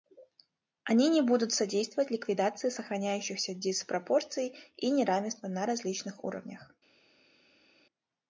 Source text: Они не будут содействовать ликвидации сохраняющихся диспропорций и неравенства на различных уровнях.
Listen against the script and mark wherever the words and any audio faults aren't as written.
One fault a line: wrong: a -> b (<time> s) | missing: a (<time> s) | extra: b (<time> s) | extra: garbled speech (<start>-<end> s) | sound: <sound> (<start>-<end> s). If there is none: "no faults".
no faults